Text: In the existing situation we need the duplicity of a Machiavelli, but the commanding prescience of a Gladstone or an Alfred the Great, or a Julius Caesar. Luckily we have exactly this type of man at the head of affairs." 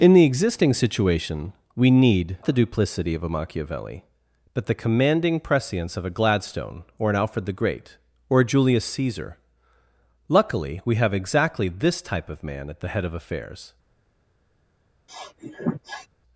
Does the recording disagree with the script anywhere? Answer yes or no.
no